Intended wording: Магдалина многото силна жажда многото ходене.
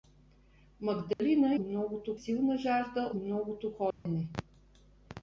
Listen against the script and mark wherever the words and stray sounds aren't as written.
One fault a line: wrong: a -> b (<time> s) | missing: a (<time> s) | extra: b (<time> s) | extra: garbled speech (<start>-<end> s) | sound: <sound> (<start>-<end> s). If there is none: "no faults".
sound: dropout (1.1-1.2 s)
sound: dropout (3.9-4.1 s)